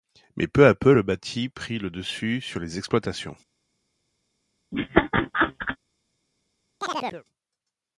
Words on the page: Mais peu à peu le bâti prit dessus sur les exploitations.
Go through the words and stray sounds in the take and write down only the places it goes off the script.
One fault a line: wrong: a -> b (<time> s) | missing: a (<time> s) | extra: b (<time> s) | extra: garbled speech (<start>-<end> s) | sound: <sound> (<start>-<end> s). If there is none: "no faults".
extra: le (1.8 s)
sound: laugh (4.7-5.8 s)
sound: chirp (6.8-7.2 s)